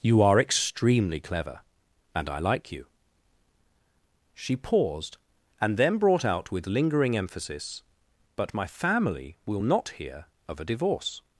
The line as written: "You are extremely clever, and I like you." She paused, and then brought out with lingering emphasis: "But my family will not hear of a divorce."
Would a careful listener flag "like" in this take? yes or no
no